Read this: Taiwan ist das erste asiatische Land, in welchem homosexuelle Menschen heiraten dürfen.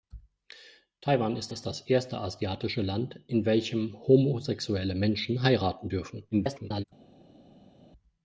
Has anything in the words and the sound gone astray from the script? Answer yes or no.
yes